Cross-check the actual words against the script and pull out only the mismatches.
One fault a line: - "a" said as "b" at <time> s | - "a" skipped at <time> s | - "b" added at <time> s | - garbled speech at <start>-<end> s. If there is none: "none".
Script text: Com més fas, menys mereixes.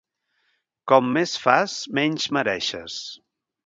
none